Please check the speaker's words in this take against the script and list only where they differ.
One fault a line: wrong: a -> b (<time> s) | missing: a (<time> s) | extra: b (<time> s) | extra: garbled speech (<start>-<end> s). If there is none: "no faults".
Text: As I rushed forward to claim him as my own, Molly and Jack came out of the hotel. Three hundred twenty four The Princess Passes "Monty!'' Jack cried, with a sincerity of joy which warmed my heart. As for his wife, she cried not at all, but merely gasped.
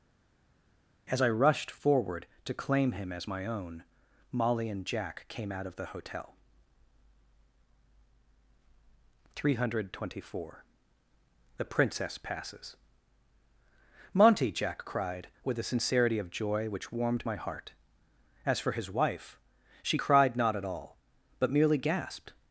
no faults